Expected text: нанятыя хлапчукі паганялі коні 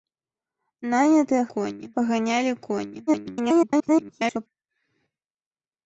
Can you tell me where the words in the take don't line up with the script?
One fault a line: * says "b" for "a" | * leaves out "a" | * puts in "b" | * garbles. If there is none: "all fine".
* says "коні" for "хлапчукі"
* garbles